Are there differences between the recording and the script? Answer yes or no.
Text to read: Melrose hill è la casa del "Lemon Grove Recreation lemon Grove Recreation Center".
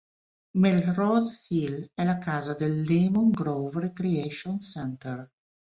yes